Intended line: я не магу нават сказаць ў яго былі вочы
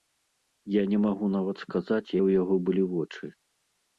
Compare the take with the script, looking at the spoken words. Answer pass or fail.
pass